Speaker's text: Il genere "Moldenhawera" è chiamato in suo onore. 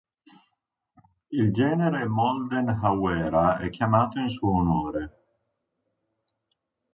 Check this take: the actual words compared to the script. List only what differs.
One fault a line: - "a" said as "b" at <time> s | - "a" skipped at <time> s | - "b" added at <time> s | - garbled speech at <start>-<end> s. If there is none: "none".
none